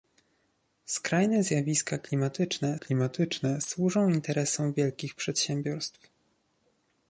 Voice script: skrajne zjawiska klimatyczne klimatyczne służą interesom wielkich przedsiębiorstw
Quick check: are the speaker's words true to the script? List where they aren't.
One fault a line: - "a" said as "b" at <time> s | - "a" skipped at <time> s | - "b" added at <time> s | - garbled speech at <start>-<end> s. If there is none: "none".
none